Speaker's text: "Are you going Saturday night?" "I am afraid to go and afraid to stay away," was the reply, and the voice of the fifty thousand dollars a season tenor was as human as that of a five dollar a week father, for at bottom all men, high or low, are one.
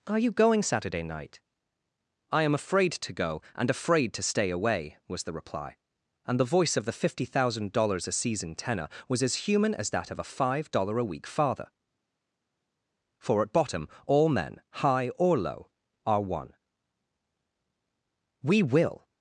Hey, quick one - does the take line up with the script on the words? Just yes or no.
no